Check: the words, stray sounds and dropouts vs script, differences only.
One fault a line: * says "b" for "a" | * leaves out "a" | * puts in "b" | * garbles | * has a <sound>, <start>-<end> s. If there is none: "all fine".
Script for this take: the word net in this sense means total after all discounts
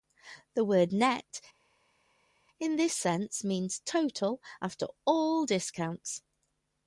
all fine